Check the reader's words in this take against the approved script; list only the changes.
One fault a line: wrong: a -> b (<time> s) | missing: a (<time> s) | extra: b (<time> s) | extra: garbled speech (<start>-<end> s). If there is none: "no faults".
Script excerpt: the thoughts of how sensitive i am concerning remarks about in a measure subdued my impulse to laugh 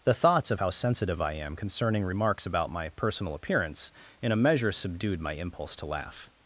extra: my personal appearance (2.7 s)